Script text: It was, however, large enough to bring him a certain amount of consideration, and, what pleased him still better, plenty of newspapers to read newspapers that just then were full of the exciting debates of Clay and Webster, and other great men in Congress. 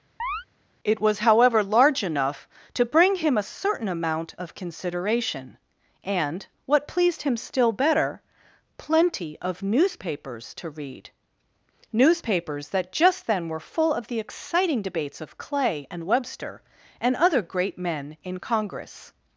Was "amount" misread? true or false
false